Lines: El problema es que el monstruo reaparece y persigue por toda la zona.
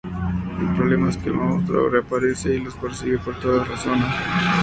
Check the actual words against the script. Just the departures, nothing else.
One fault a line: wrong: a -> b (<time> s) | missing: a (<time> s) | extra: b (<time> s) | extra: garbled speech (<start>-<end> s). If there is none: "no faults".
extra: los (2.6 s)